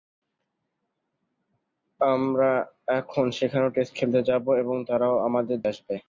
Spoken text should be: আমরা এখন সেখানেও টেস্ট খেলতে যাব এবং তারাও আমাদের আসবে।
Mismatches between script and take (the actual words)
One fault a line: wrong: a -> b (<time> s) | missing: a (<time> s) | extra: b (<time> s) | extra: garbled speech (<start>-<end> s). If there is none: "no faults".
no faults